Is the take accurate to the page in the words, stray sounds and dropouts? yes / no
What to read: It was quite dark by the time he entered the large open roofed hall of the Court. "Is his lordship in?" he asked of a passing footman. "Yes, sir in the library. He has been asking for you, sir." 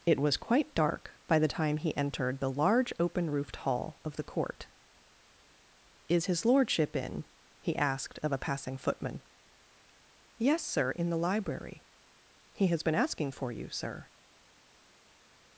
yes